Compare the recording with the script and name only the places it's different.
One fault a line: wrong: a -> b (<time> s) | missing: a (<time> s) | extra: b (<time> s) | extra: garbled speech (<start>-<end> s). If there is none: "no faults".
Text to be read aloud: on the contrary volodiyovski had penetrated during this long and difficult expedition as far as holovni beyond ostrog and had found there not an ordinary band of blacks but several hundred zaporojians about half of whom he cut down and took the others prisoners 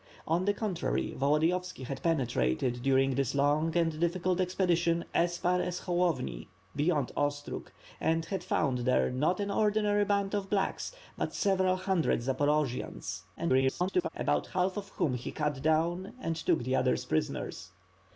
extra: garbled speech (13.4-14.1 s)